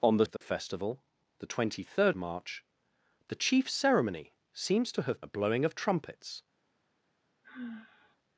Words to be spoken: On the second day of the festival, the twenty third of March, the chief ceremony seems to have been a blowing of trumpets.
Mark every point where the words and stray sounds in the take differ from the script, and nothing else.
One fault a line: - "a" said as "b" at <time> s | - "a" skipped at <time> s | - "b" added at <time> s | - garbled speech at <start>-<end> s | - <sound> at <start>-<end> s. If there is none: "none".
- "second day" skipped at 0.2 s
- dropout at 0.4-0.4 s
- "of" skipped at 2.1 s
- "been" skipped at 5.2 s
- sigh at 7.4-8.2 s